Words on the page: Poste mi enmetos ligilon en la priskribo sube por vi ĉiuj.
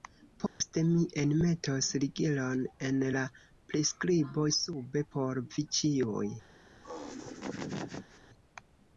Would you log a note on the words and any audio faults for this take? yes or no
yes